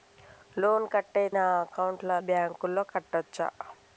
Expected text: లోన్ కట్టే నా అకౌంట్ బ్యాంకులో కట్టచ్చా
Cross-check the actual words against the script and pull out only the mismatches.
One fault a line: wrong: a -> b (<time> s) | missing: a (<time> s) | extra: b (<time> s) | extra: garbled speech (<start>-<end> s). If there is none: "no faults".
no faults